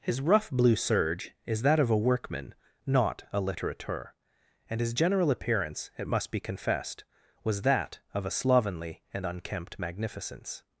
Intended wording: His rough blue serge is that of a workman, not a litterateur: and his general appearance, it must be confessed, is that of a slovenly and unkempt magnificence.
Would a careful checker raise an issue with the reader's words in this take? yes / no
yes